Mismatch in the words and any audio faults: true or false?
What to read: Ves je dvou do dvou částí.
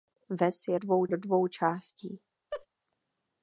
true